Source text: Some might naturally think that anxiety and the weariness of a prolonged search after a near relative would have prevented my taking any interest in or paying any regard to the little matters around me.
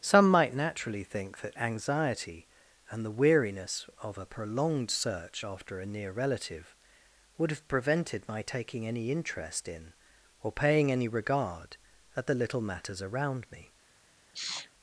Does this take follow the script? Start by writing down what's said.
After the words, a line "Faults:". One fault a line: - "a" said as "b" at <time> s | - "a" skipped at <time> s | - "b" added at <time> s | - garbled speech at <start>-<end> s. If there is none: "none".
Some might naturally think that anxiety and the weariness of a prolonged search after a near relative would have prevented my taking any interest in or paying any regard at the little matters around me.
Faults:
- "to" said as "at" at 12.2 s